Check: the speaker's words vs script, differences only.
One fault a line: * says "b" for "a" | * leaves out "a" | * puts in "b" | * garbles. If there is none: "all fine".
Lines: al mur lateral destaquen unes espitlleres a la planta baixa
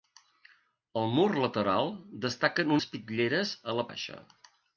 * leaves out "unes"
* leaves out "planta"